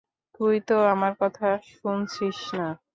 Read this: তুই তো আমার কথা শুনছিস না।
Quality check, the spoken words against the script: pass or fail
pass